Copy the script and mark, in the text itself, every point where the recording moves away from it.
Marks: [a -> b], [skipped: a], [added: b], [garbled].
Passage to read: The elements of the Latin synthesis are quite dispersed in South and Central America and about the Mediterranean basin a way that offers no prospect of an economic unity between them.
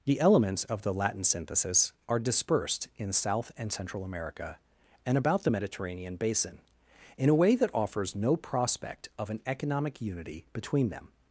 The elements of the Latin synthesis are [skipped: quite] dispersed in South and Central America and about the Mediterranean basin [added: in] a way that offers no prospect of an economic unity between them.